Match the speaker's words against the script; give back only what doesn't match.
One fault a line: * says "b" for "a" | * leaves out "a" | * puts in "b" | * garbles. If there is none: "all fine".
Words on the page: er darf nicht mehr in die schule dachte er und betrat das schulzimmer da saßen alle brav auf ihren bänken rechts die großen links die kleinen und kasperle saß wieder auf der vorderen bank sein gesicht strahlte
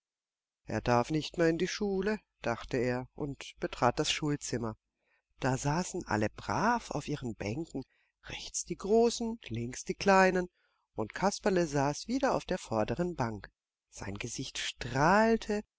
all fine